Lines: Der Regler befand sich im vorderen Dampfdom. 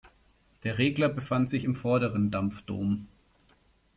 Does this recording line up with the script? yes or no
yes